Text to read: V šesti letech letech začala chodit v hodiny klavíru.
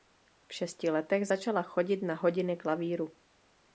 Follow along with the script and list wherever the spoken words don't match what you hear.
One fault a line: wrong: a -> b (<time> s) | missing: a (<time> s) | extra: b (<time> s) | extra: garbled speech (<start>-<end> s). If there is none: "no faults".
missing: letech (1.3 s)
wrong: v -> na (2.0 s)